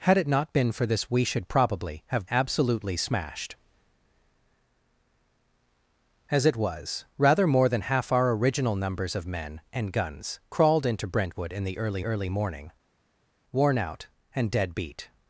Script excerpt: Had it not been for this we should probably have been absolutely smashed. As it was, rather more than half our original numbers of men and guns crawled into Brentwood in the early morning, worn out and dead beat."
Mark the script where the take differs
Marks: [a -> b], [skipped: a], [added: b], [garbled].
Had it not been for this we should probably have [skipped: been] absolutely smashed. As it was, rather more than half our original numbers of men and guns crawled into Brentwood in the early [added: early] morning, worn out and dead beat."